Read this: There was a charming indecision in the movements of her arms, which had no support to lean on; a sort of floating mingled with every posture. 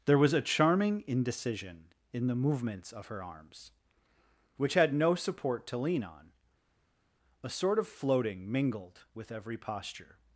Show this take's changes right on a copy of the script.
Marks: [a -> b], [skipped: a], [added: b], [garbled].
There was a charming indecision in the movements of her arms, which had no support to lean on; a sort of floating mingled with every posture.